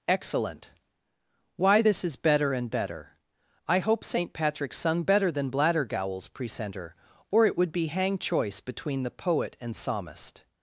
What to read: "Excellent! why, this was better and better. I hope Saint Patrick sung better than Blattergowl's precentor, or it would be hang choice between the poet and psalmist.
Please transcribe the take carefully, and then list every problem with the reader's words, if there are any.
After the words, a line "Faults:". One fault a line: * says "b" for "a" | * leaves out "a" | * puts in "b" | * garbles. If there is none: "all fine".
"Excellent! why, this is better and better. I hope Saint Patrick sung better than Blattergowl's precentor, or it would be hang choice between the poet and psalmist.
Faults:
* says "is" for "was"